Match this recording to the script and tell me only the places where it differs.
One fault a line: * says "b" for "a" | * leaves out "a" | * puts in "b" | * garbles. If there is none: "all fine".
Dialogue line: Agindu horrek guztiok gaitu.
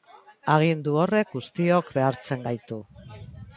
* puts in "behartzen"